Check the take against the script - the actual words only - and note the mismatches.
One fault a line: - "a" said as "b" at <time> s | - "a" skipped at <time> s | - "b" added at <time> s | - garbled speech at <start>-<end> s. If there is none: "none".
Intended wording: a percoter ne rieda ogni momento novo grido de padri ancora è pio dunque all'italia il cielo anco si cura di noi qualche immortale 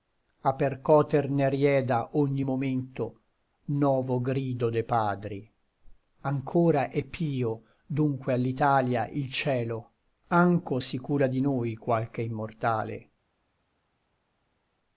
none